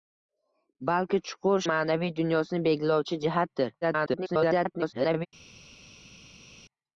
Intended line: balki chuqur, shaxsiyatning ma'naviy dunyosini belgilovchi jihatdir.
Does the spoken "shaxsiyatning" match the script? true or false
false